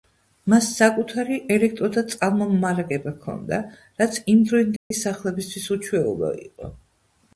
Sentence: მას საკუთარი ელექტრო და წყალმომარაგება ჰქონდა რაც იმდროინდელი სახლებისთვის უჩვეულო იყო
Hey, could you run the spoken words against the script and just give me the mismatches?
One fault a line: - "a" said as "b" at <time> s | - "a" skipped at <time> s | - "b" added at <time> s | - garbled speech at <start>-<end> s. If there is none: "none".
none